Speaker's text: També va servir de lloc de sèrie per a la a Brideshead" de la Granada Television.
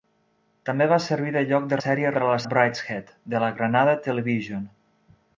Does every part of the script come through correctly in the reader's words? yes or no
yes